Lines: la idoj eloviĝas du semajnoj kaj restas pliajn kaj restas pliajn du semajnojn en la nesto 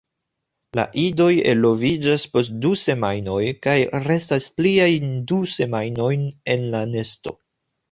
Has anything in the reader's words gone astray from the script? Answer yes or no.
yes